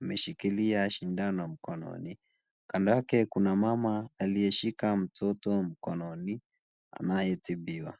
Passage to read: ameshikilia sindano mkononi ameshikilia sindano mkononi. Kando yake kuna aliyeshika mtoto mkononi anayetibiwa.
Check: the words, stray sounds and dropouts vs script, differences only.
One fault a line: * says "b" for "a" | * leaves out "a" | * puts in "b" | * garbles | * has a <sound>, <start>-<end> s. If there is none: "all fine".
* leaves out "ameshikilia sindano mkononi"
* puts in "mama"